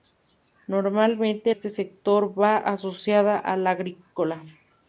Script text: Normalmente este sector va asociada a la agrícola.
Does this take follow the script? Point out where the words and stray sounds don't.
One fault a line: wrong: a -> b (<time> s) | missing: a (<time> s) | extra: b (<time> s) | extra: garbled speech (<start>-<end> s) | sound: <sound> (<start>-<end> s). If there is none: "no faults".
no faults